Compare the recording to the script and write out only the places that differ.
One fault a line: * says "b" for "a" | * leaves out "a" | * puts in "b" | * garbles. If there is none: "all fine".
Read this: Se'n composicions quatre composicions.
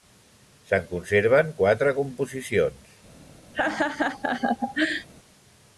* says "conserven" for "composicions"